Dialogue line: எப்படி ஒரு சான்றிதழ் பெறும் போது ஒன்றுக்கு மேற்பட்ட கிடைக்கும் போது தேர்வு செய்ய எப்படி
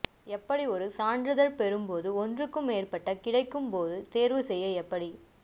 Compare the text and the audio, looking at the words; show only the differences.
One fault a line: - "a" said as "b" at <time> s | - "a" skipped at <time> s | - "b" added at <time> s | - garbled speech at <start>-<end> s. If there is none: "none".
none